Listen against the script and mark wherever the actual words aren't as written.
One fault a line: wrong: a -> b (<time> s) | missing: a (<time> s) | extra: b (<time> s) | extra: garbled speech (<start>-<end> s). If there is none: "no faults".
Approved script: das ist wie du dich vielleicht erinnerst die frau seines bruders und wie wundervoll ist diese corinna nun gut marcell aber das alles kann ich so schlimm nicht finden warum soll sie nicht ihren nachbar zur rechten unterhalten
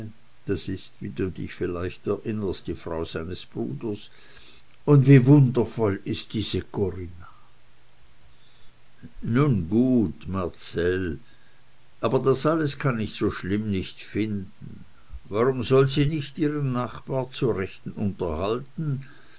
no faults